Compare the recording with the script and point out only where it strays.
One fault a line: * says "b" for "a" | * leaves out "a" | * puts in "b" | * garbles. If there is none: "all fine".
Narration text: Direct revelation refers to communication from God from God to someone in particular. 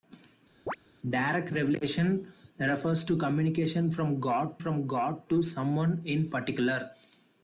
all fine